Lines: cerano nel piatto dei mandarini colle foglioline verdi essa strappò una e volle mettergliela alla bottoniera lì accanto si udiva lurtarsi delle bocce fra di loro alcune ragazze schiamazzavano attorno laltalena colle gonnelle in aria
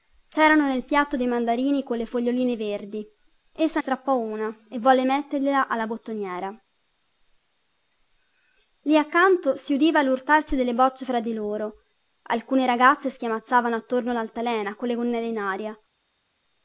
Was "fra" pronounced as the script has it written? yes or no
yes